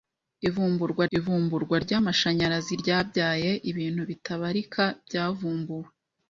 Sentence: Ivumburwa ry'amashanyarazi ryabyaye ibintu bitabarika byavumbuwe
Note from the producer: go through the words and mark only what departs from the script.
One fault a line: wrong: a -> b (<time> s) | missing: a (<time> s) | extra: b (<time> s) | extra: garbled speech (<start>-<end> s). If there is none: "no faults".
extra: ivumburwa (1.2 s)